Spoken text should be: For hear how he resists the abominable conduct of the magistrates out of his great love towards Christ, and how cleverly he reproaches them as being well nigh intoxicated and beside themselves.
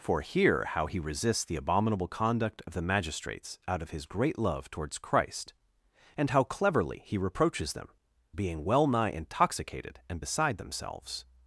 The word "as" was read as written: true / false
false